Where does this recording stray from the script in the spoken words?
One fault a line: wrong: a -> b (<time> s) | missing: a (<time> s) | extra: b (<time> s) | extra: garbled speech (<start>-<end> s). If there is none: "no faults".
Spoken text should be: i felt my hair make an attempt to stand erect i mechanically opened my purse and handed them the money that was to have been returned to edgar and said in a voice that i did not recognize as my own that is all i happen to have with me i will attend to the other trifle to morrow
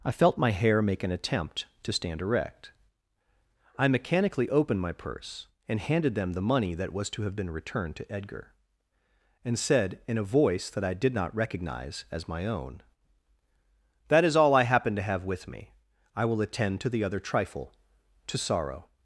wrong: morrow -> sorrow (18.4 s)